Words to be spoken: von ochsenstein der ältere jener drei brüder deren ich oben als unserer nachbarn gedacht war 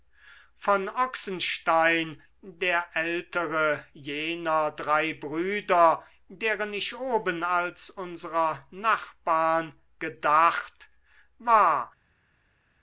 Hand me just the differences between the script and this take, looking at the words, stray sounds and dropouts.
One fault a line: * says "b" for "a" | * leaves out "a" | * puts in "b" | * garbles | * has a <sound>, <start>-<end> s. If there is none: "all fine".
all fine